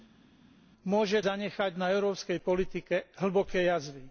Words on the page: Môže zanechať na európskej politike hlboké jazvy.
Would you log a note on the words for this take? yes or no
no